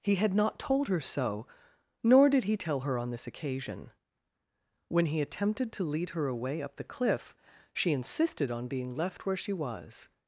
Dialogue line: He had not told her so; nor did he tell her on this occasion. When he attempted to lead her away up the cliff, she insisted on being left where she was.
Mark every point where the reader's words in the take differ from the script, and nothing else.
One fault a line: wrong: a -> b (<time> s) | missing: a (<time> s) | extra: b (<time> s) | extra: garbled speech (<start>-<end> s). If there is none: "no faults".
no faults